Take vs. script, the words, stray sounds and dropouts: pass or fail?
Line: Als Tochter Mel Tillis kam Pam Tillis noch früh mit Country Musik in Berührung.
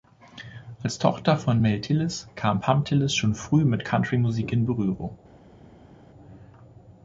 fail